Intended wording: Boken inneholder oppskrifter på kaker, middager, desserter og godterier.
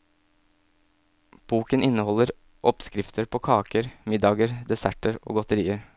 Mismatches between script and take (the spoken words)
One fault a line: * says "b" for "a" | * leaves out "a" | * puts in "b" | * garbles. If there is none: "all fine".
all fine